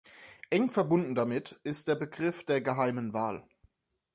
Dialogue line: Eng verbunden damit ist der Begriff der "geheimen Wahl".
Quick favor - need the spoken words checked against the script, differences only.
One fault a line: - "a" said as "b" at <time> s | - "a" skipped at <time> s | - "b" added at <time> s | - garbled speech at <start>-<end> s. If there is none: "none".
none